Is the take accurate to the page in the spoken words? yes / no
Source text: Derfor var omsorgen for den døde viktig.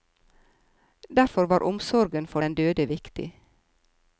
yes